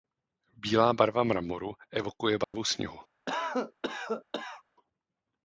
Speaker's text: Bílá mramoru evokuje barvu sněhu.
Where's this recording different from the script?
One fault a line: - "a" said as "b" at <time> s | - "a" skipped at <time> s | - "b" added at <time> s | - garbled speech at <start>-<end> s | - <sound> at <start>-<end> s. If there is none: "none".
- "barva" added at 0.9 s
- dropout at 2.4-2.5 s
- cough at 3.3-4.6 s